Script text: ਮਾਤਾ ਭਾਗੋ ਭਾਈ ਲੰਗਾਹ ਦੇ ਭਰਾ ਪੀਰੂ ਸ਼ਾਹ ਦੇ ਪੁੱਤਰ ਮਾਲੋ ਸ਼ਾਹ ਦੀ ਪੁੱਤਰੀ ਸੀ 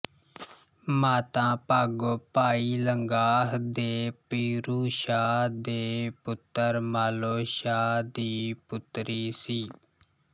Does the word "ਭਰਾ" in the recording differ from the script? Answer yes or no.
yes